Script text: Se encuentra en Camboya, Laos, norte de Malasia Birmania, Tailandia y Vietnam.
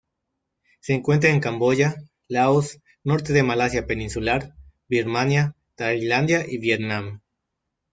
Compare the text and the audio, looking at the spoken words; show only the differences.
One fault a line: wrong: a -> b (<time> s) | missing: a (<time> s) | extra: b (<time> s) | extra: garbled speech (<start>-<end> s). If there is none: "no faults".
extra: Peninsular (3.9 s)